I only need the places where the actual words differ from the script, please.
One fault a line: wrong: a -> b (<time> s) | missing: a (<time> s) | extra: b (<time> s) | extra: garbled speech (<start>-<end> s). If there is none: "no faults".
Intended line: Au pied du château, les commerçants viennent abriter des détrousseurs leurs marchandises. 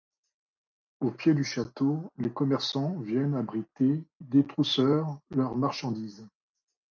missing: des (4.1 s)